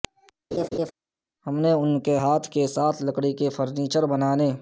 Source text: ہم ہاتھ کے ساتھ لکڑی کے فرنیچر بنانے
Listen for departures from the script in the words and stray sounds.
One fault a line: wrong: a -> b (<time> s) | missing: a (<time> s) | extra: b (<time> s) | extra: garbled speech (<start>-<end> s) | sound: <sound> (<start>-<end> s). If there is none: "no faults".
sound: laugh (0.5-0.9 s)
extra: نے ان کے (1.6 s)